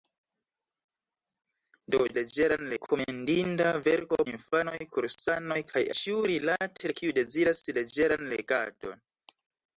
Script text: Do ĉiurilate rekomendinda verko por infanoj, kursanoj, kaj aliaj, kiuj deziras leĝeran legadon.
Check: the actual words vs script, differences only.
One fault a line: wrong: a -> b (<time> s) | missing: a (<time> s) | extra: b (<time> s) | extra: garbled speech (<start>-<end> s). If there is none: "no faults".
wrong: ĉiurilate -> leĝeran (2.2 s)
missing: por (4.2 s)
wrong: aliaj -> ĉiurilate (6.0 s)